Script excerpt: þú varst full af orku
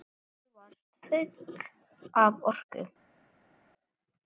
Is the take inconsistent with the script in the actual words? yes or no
no